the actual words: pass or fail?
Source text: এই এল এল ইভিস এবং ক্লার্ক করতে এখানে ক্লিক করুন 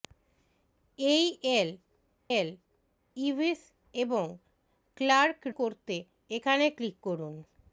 pass